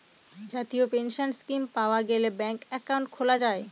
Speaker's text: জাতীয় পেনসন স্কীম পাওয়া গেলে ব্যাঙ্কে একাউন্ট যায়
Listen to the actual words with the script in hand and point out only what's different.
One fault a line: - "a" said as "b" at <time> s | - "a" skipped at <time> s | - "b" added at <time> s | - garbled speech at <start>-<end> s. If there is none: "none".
- "খোলা" added at 3.1 s